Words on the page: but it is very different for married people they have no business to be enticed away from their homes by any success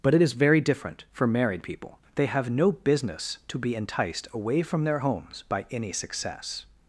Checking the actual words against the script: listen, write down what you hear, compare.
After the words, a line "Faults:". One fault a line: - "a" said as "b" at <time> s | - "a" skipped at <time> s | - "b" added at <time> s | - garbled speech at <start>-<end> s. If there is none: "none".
but it is very different for married people they have no business to be enticed away from their homes by any success
Faults:
none